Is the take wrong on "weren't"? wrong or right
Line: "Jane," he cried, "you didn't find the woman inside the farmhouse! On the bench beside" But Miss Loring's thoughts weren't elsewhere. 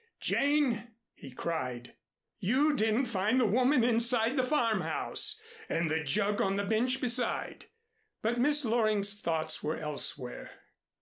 wrong